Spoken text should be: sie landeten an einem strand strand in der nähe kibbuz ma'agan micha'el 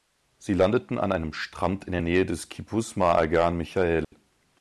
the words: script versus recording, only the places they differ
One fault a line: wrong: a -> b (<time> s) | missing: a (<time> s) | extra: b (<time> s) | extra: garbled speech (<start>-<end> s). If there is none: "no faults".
missing: strand (1.9 s)
extra: des (2.2 s)